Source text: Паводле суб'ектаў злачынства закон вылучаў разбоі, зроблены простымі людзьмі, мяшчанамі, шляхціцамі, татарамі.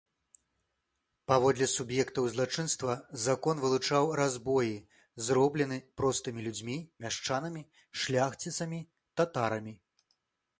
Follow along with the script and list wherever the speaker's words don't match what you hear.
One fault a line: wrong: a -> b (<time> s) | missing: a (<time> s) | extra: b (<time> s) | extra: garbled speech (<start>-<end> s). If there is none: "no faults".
no faults